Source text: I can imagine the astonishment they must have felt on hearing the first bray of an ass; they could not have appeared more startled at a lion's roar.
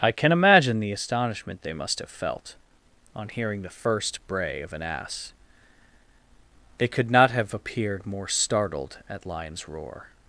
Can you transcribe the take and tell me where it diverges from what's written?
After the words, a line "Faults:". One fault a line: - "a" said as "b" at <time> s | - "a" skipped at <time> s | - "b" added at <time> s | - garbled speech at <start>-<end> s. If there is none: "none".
I can imagine the astonishment they must have felt on hearing the first bray of an ass; they could not have appeared more startled at lion's roar.
Faults:
- "a" skipped at 9.3 s